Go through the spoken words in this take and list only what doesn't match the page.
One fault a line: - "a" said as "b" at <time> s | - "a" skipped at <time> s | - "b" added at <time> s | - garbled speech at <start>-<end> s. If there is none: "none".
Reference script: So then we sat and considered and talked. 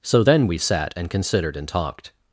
none